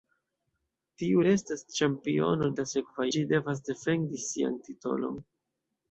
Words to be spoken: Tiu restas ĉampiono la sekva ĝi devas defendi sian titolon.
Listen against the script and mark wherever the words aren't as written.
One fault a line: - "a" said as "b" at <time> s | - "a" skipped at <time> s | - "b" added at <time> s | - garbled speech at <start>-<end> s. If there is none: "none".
none